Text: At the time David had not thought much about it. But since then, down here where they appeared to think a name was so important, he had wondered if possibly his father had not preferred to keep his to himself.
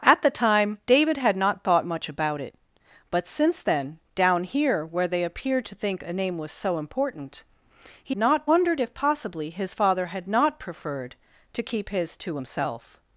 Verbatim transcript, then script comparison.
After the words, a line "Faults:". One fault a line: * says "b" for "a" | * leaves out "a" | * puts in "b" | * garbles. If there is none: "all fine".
At the time David had not thought much about it. But since then, down here where they appeared to think a name was so important, he not wondered if possibly his father had not preferred to keep his to himself.
Faults:
* says "not" for "had"